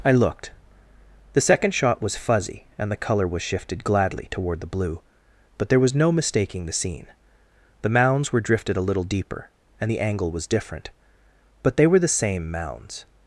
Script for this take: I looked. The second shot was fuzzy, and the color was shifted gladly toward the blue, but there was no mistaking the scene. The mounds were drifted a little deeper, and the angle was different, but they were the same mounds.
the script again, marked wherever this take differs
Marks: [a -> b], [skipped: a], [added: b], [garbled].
I looked. The second shot was fuzzy, and the color was shifted gladly toward the blue, but there was no mistaking the scene. The mounds were drifted a little deeper, and the angle was different, but they were the same mounds.